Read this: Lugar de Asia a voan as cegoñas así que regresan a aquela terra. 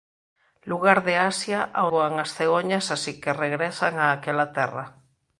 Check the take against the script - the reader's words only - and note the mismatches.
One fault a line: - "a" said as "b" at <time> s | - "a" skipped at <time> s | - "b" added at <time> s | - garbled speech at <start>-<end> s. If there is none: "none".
none